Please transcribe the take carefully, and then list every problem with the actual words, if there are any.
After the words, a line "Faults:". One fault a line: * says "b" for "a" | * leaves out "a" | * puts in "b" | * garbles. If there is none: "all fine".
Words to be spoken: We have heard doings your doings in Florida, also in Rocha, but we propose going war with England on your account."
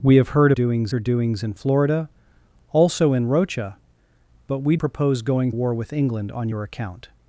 We have heard doings your doings in Florida, also in Rocha, but we propose going war with England on your account."
Faults:
all fine